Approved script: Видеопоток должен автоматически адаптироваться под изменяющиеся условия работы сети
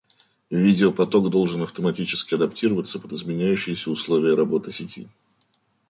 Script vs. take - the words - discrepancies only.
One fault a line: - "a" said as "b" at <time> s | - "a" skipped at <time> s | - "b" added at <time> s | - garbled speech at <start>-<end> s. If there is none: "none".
none